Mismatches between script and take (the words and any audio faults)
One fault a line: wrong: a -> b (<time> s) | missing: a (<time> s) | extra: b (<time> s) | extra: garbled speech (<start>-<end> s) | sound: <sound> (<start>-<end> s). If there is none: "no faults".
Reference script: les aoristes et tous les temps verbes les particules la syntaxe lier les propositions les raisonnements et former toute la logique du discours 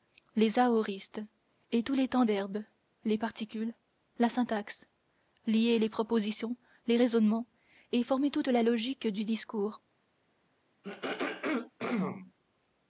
sound: throat clearing (10.8-12.3 s)